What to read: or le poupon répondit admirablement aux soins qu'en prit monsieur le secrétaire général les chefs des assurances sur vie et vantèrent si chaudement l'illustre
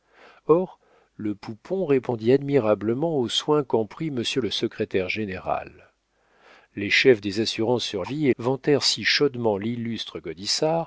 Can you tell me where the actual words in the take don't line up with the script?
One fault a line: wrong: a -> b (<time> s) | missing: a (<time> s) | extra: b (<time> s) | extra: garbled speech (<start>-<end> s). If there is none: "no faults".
no faults